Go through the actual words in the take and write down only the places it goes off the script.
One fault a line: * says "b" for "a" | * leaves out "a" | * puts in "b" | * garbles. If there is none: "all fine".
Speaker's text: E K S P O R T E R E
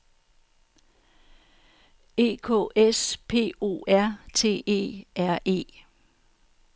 all fine